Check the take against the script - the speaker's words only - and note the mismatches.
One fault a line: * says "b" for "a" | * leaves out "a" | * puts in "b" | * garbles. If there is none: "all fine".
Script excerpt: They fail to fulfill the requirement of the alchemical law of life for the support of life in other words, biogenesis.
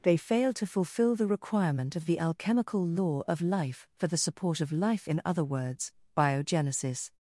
all fine